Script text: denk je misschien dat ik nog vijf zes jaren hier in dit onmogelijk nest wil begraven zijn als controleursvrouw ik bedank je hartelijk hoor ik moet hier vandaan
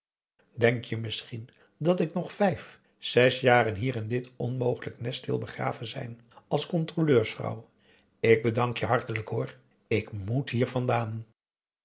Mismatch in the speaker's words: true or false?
false